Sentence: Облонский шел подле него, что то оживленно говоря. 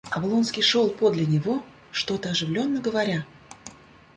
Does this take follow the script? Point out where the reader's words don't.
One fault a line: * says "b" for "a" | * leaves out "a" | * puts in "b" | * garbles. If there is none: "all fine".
all fine